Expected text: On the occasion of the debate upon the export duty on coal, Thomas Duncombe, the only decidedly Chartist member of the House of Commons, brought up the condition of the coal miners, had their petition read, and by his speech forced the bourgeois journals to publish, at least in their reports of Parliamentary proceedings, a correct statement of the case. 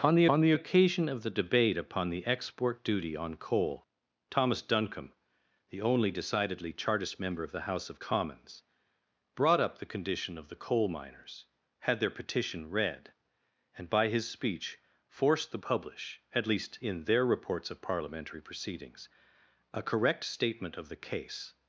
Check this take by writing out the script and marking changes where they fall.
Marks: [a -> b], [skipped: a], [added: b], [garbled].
On the [added: on the] occasion of the debate upon the export duty on coal, Thomas Duncombe, the only decidedly Chartist member of the House of Commons, brought up the condition of the coal miners, had their petition read, and by his speech forced the [skipped: bourgeois journals to] publish, at least in their reports of Parliamentary proceedings, a correct statement of the case.